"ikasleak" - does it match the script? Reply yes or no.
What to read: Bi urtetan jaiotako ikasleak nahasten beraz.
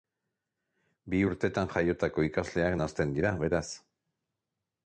yes